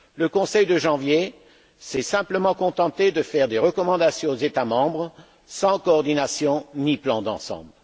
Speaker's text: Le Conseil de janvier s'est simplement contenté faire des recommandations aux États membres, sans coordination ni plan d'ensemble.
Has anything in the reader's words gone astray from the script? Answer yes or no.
yes